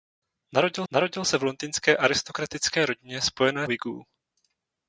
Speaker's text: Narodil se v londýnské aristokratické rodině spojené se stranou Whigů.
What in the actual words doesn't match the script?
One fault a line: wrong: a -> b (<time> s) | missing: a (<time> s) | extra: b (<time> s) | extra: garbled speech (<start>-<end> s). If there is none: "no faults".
extra: narodil (0.9 s)
missing: se stranou (3.7 s)